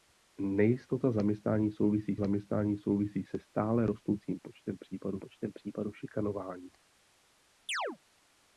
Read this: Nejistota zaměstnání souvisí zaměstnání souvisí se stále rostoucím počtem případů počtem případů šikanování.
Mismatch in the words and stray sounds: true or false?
true